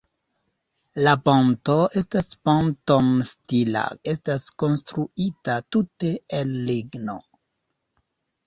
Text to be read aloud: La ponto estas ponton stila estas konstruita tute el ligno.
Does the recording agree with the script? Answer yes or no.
yes